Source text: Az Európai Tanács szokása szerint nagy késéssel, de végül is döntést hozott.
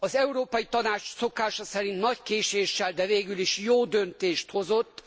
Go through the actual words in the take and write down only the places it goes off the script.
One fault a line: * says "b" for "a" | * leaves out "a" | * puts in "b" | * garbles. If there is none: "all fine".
* puts in "jó"